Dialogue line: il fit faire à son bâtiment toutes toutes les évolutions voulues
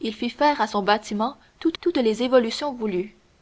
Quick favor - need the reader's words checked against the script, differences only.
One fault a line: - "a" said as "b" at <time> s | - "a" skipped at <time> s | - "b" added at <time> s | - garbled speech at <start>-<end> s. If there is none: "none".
none